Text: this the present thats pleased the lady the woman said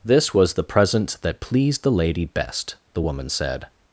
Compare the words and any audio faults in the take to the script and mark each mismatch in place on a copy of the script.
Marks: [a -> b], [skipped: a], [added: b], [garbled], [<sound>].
this [added: was] the present [thats -> that] pleased the lady [added: best] the woman said